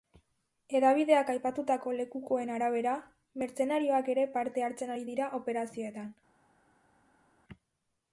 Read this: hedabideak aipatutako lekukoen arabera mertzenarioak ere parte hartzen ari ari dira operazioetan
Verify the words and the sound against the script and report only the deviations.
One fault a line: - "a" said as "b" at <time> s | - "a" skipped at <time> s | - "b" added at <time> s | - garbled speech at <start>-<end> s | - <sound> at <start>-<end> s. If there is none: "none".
- "ari" skipped at 5.1 s